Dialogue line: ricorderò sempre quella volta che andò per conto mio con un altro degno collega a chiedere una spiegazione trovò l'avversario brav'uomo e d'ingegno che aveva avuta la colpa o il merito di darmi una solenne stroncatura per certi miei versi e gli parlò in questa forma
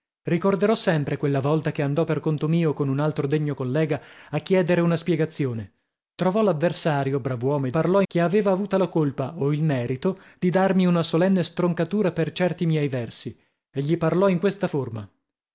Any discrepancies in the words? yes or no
yes